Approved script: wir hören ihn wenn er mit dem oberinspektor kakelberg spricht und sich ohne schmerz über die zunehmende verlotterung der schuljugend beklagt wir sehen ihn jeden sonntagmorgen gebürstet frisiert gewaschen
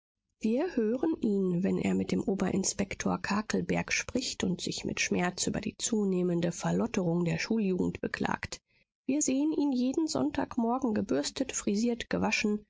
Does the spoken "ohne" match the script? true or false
false